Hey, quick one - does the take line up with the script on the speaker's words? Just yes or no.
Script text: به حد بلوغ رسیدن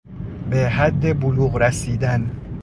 yes